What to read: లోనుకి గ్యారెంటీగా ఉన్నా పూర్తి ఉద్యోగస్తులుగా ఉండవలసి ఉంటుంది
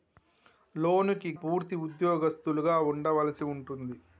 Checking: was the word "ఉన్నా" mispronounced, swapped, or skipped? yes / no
yes